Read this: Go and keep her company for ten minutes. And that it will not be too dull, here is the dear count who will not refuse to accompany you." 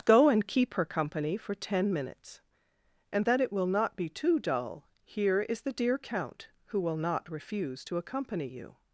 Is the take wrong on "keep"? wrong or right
right